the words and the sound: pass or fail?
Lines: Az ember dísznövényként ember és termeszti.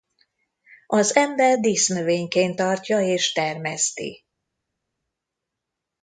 fail